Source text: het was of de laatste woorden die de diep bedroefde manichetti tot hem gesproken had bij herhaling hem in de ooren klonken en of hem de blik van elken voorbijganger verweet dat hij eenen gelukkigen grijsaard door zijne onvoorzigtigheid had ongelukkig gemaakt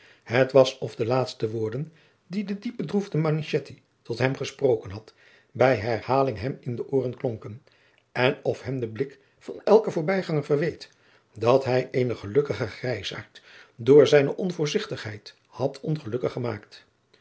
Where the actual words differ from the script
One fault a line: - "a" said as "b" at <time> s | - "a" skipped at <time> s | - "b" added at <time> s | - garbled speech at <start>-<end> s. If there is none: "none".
none